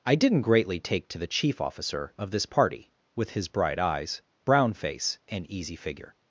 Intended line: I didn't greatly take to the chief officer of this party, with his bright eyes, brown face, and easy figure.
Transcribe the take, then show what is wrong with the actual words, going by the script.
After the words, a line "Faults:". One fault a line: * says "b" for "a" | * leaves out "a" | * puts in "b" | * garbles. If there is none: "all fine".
I didn't greatly take to the chief officer of this party, with his bright eyes, brown face, and easy figure.
Faults:
all fine